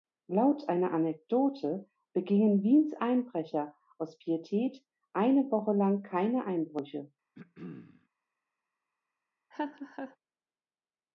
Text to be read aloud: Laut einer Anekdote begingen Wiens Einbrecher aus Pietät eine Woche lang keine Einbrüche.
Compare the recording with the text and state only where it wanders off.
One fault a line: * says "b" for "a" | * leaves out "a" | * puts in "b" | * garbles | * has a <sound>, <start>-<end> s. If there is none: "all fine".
* has a throat clearing, 7.3-8.1 s
* has a laugh, 9.5-10.2 s